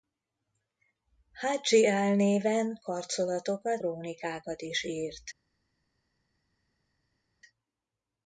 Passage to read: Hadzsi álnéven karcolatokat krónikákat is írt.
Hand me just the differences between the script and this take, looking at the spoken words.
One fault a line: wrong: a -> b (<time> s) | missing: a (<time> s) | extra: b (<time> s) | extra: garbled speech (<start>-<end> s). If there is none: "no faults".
no faults